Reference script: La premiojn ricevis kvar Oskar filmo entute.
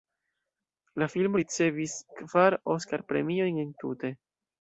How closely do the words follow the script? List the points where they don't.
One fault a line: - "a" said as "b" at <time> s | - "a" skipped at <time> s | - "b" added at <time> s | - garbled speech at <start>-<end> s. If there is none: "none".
- "premiojn" said as "filmo" at 1.1 s
- "filmo" said as "premiojn" at 3.1 s